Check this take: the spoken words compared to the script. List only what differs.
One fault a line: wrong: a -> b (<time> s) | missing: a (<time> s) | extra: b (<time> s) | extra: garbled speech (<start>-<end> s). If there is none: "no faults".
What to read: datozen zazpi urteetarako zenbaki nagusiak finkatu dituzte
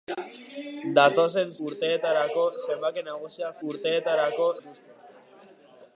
missing: zazpi (1.5 s)
wrong: finkatu -> urteetarako (3.7 s)